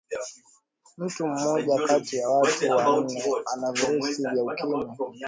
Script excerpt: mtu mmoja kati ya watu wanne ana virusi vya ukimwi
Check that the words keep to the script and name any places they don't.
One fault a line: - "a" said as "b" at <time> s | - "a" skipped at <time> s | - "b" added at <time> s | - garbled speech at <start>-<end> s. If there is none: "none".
none